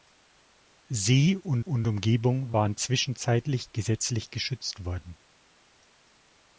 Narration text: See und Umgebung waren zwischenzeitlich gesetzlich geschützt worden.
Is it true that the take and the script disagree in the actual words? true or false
true